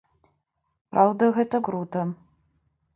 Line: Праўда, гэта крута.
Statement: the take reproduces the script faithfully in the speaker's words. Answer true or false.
true